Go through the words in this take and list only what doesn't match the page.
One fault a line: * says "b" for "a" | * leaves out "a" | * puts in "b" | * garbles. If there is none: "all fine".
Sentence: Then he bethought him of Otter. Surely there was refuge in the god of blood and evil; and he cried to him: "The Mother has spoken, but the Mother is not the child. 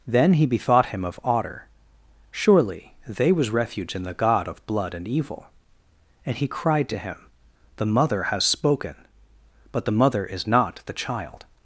* says "they" for "there"